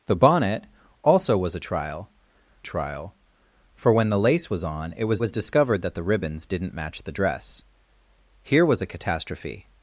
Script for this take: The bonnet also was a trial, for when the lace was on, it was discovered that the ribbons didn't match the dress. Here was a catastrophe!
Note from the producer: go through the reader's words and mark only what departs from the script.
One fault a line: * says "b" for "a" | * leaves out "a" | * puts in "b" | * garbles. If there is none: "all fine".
* puts in "trial"
* puts in "was"